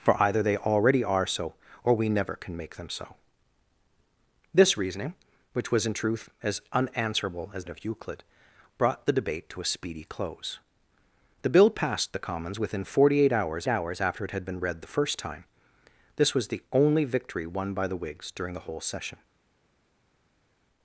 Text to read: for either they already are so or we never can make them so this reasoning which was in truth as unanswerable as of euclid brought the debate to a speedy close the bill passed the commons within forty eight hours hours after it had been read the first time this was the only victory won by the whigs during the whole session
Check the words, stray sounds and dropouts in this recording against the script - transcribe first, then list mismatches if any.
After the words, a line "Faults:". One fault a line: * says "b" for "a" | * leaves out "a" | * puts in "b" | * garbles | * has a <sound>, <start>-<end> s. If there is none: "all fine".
for either they already are so or we never can make them so this reasoning which was in truth as unanswerable as of euclid brought the debate to a speedy close the bill passed the commons within forty eight hours hours after it had been read the first time this was the only victory won by the whigs during the whole session
Faults:
all fine